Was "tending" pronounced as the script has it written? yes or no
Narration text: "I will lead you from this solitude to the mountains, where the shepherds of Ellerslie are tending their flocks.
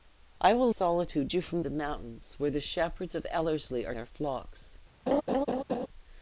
no